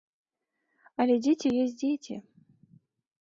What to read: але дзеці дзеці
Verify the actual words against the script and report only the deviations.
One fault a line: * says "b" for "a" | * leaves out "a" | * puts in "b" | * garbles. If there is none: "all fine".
* puts in "ёсць"